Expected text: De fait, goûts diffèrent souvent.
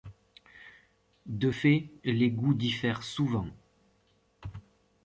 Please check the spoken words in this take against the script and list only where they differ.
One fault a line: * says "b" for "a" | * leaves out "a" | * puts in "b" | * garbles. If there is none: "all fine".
* puts in "les"